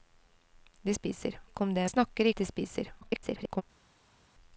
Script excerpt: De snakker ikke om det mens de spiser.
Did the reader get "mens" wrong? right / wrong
wrong